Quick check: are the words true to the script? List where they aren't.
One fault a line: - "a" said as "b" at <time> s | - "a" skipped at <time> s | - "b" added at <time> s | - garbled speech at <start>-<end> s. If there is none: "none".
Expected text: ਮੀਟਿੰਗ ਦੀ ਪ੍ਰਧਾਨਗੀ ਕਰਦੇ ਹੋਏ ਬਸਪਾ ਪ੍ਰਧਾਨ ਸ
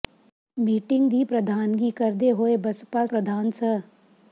none